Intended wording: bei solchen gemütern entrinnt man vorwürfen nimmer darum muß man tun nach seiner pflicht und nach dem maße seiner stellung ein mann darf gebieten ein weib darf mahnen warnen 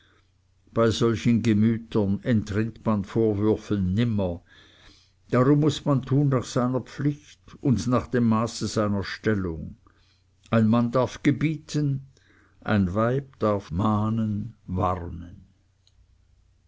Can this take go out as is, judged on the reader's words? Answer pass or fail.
pass